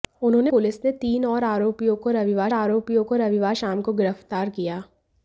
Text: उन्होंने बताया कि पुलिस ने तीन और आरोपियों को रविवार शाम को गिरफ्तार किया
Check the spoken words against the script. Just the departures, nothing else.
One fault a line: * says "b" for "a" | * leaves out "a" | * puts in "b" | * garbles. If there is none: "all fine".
* leaves out "बताया कि"
* puts in "आरोपियों को रविवार"